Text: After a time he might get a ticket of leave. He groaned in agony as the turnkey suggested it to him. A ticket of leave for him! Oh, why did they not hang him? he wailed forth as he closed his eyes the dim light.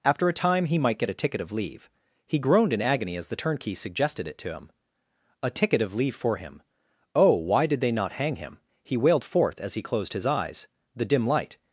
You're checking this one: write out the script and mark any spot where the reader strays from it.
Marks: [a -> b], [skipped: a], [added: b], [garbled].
After a time he might get a ticket of leave. He groaned in agony as the turnkey suggested it to him. A ticket of leave for him! Oh, why did they not hang him? he wailed forth as he closed his eyes the dim light.